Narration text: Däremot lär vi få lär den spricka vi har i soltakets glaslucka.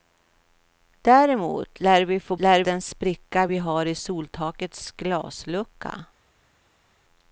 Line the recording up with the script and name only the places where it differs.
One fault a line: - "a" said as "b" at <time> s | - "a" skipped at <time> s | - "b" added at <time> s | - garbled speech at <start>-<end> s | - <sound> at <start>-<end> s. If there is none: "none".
none